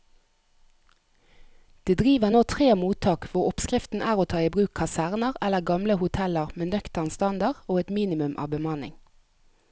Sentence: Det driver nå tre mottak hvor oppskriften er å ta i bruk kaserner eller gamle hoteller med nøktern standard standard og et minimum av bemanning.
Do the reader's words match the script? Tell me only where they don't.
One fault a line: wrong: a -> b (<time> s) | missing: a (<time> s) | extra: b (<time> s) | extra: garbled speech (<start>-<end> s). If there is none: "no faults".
missing: standard (7.6 s)